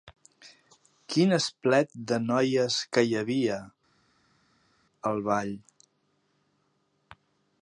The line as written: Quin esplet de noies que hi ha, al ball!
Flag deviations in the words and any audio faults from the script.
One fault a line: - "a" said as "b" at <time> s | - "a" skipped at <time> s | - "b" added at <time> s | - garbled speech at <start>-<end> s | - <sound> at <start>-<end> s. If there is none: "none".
- "ha" said as "havia" at 3.2 s